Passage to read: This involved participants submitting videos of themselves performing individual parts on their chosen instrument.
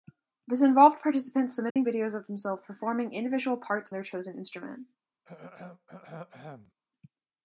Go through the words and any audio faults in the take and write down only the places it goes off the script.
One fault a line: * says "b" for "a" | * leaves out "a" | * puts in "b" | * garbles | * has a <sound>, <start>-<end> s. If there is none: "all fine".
* has a dropout, 1.7-1.8 s
* leaves out "on"
* has a throat clearing, 5.2-6.7 s